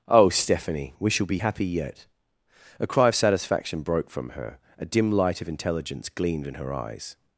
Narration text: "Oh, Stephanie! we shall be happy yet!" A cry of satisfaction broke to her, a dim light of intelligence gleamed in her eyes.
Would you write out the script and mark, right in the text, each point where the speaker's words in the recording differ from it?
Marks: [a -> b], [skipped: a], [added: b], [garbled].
"Oh, Stephanie! we shall be happy yet!" A cry of satisfaction broke [to -> from] her, a dim light of intelligence gleamed in her eyes.